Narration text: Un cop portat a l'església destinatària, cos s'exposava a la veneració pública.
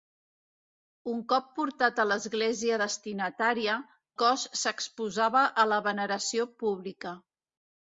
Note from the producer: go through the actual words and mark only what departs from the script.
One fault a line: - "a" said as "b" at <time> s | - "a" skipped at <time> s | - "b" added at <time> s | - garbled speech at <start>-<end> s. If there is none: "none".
none